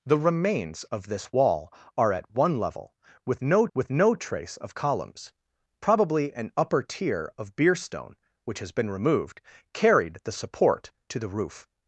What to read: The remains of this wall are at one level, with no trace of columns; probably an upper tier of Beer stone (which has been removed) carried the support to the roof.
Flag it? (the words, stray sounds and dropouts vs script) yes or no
yes